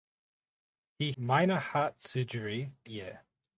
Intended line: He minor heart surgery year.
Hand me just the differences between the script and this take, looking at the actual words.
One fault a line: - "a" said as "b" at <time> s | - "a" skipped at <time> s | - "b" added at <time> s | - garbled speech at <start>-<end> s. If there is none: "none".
none